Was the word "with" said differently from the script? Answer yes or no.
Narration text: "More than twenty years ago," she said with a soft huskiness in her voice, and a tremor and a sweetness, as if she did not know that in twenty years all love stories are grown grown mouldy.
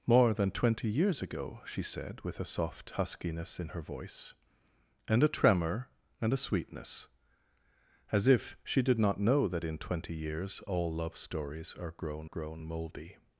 no